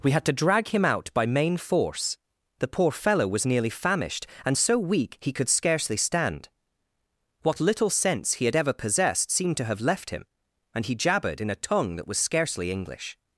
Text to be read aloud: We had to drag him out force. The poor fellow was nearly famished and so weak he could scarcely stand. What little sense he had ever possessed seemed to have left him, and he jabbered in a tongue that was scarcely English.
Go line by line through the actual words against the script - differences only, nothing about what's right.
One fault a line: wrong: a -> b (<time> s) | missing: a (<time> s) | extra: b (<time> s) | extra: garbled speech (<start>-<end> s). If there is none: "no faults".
extra: by main (1.1 s)